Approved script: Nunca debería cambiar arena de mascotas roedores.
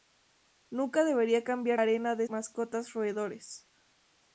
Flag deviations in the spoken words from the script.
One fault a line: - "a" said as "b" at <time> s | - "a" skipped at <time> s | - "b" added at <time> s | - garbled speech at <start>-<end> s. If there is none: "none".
none